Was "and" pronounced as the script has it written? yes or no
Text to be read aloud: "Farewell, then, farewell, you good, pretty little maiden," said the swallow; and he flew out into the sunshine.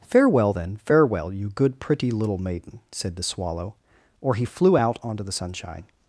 no